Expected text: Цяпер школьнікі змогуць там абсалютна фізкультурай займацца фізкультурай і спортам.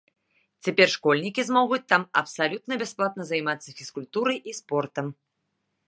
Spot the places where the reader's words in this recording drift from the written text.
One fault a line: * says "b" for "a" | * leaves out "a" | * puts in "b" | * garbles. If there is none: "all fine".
* says "бясплатна" for "фізкультурай"